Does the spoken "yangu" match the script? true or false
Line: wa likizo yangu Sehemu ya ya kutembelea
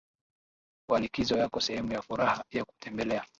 false